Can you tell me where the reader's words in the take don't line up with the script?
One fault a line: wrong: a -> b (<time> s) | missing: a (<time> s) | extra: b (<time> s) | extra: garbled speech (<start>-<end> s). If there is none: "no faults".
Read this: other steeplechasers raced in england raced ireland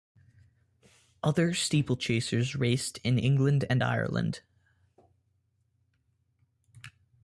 wrong: raced -> and (3.7 s)